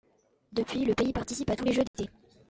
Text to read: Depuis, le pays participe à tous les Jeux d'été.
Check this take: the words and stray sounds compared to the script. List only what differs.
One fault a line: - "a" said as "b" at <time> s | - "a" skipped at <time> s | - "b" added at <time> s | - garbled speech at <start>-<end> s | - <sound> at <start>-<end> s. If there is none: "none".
- dropout at 1.9-1.9 s